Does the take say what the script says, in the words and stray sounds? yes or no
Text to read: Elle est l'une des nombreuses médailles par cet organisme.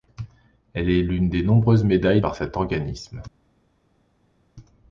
yes